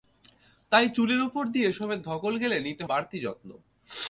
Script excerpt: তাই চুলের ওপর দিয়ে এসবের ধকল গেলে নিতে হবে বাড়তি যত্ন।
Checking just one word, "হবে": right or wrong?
wrong